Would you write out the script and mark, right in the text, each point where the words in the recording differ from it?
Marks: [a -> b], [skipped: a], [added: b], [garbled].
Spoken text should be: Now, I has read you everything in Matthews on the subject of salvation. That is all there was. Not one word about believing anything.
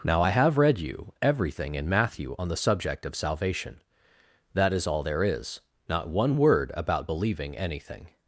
Now, I [has -> have] read you everything in [Matthews -> Matthew] on the subject of salvation. That is all there [was. -> is] Not one word about believing anything.